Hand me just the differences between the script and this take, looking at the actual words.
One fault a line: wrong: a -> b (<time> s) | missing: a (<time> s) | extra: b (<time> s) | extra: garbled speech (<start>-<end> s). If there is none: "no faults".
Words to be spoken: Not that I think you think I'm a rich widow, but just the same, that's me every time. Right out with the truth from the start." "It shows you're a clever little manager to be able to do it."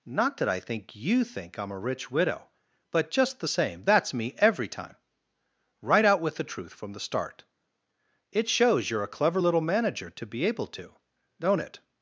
wrong: do -> don't (11.4 s)